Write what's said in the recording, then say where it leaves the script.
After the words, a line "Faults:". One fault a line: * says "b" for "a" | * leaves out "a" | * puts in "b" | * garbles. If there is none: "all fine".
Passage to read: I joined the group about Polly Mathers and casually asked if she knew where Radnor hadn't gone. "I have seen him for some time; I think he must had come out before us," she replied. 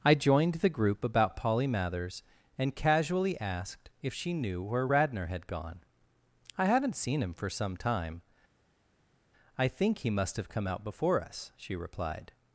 I joined the group about Polly Mathers and casually asked if she knew where Radnor had gone. "I haven't seen him for some time; I think he must have come out before us," she replied.
Faults:
* says "had" for "hadn't"
* says "haven't" for "have"
* says "have" for "had"